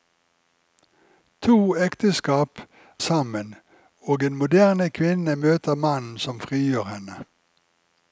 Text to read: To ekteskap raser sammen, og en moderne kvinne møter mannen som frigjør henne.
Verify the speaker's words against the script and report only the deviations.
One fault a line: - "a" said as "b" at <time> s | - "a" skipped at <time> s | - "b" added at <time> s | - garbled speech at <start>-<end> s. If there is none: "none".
- "raser" skipped at 2.6 s